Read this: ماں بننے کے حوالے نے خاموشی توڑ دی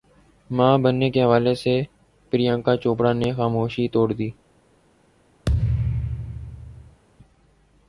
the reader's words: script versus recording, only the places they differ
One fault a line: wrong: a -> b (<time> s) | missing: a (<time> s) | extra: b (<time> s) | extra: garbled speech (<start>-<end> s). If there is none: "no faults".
extra: سے پریانکا چوپڑا (1.6 s)